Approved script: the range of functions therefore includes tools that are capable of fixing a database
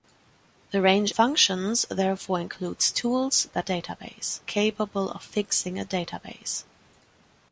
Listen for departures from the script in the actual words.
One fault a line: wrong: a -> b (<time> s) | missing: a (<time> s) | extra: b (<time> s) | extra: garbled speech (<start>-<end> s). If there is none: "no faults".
missing: of (1.1 s)
wrong: are -> database (3.6 s)